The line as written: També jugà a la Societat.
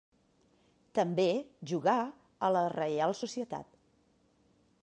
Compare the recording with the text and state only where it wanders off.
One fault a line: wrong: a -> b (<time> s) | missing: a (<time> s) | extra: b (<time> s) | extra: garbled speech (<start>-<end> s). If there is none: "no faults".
extra: Reial (2.8 s)